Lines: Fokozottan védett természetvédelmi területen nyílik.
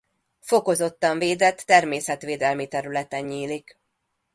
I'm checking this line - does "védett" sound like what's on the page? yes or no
yes